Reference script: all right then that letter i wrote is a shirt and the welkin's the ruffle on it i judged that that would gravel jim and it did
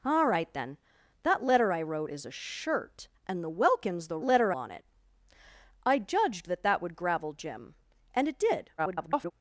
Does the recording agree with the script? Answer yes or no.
no